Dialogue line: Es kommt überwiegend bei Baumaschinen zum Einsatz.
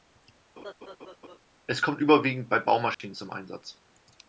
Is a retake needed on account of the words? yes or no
no